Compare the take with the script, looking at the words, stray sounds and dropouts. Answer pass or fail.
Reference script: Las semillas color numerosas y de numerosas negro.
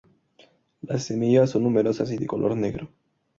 fail